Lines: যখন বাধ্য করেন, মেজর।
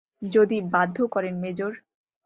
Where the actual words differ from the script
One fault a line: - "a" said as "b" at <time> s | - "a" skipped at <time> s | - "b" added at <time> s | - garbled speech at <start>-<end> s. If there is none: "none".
- "যখন" said as "যদি" at 0.3 s